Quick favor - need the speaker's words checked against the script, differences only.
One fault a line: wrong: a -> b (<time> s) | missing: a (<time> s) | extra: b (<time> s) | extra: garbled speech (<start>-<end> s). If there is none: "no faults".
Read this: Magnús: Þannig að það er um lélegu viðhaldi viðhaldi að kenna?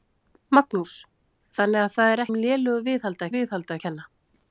no faults